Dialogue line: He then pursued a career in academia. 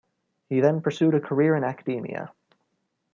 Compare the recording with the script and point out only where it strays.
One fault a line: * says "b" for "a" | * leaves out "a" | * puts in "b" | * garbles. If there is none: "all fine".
all fine